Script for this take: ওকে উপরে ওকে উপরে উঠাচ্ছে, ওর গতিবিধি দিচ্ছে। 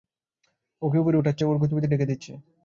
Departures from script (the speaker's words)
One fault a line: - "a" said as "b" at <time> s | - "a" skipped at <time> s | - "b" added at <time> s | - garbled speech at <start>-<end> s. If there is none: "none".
- "ওকে উপরে" skipped at 1.2 s
- "ঢেকে" added at 1.9 s